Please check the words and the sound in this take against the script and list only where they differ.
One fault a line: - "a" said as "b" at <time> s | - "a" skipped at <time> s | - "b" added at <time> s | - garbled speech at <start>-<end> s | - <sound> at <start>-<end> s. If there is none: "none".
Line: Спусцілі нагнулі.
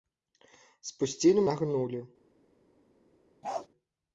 - bark at 3.4-3.7 s